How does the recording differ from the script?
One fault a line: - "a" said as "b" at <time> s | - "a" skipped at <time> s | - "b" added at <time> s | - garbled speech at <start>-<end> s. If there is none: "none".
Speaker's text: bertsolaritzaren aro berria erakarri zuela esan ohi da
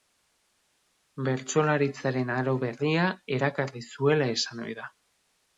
none